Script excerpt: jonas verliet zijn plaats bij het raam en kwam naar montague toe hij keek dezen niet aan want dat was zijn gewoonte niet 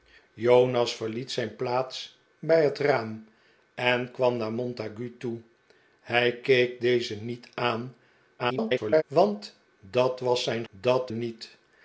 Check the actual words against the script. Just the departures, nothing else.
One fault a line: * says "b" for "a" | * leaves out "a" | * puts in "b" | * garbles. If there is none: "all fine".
* garbles
* says "dat" for "gewoonte"